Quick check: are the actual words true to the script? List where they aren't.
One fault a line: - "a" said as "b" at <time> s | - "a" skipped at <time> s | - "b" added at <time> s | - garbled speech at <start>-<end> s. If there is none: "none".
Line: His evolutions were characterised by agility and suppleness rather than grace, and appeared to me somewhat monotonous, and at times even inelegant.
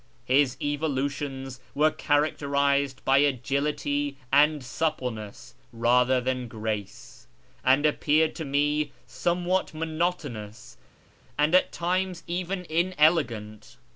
none